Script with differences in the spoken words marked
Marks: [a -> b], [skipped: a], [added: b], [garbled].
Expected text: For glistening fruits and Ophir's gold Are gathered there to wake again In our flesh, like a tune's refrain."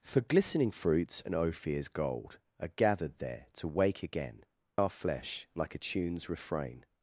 For glistening fruits and Ophir's gold Are gathered there to wake again [skipped: In] our flesh, like a tune's refrain."